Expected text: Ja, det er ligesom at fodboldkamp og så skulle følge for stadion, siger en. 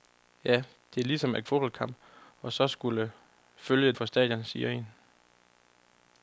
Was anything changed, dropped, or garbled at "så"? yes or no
no